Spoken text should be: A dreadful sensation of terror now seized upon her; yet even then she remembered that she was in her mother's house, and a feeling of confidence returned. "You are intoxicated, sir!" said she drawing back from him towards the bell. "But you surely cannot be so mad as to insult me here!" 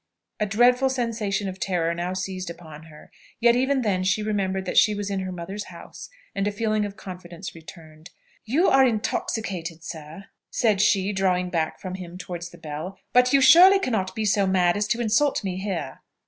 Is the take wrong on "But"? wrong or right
right